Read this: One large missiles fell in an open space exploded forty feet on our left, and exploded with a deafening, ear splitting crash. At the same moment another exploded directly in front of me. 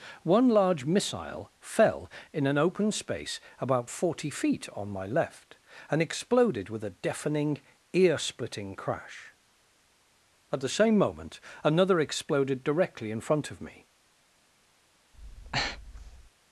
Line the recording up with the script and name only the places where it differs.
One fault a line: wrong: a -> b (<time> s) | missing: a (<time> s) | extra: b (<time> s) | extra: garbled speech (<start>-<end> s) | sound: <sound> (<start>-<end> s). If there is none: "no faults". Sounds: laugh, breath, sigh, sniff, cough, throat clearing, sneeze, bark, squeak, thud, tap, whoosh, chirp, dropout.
wrong: missiles -> missile (0.8 s)
wrong: exploded -> about (3.6 s)
wrong: our -> my (4.9 s)
sound: breath (15.1-16.3 s)